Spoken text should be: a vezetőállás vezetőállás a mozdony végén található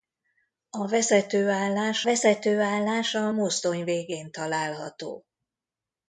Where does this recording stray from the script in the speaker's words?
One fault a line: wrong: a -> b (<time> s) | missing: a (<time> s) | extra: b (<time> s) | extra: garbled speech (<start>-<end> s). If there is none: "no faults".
no faults